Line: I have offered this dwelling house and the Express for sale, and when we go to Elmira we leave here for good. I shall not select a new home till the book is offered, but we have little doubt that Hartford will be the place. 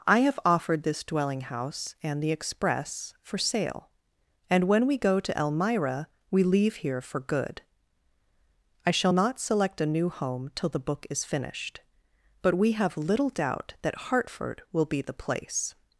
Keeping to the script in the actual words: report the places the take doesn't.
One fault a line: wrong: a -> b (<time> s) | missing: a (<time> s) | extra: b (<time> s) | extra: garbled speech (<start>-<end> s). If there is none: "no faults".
wrong: offered -> finished (11.2 s)